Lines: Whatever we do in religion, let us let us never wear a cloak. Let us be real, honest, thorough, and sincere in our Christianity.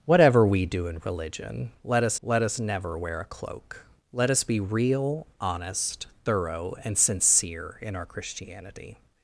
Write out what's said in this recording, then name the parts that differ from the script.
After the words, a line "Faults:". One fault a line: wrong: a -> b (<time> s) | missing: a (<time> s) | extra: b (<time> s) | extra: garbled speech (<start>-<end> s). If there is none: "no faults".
Whatever we do in religion, let us let us never wear a cloak. Let us be real, honest, thorough, and sincere in our Christianity.
Faults:
no faults